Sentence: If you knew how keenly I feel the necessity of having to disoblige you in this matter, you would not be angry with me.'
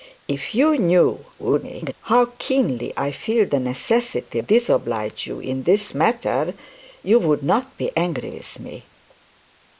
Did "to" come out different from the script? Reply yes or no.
yes